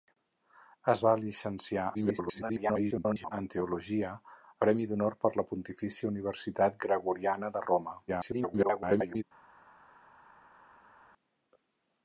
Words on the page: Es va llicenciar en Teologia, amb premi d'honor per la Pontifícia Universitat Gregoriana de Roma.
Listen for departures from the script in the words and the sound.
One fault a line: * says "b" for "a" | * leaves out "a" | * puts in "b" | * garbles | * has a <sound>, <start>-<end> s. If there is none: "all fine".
* garbles
* leaves out "amb"
* garbles